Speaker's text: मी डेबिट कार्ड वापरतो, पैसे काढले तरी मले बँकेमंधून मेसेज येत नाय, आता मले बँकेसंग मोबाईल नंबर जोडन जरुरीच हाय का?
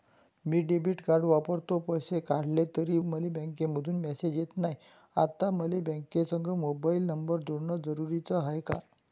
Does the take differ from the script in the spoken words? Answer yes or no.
no